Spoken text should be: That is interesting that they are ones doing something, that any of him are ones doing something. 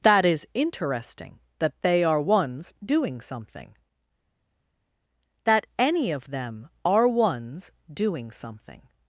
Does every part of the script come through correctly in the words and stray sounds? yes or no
no